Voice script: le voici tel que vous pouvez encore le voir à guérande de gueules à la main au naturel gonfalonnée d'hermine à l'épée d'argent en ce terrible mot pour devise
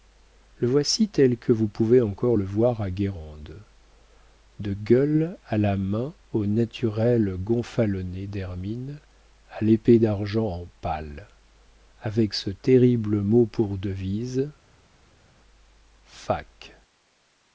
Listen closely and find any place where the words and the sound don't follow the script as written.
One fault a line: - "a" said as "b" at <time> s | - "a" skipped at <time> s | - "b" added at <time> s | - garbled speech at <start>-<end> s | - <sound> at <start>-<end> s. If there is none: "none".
- "pal avec" added at 10.8 s